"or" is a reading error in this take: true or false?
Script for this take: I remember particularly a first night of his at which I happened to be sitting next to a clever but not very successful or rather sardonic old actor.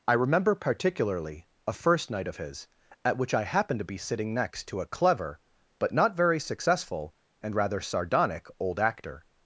true